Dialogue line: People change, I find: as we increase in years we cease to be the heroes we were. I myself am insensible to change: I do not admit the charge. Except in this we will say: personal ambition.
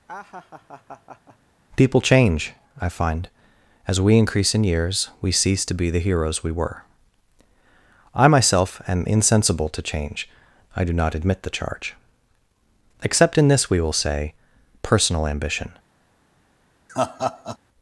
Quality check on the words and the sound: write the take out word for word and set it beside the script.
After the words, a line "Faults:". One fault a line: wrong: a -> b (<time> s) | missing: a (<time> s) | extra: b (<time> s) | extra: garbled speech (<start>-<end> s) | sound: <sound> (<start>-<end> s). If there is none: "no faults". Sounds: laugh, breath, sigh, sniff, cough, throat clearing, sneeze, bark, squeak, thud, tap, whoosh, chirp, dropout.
People change, I find: as we increase in years we cease to be the heroes we were. I myself am insensible to change: I do not admit the charge. Except in this we will say: personal ambition.
Faults:
sound: laugh (0.1-1.4 s)
sound: laugh (16.9-17.6 s)